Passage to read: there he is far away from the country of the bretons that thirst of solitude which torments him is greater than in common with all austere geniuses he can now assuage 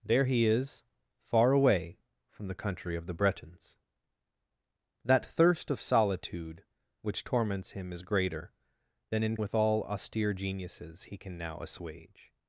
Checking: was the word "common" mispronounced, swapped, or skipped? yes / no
yes